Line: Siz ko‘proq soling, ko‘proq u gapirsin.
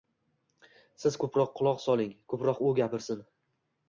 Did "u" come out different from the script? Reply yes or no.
no